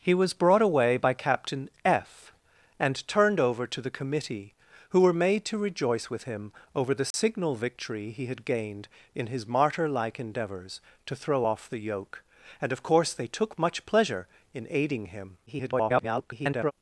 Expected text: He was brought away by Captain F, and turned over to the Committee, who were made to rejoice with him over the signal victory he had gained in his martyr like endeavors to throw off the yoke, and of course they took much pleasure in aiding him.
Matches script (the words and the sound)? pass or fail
fail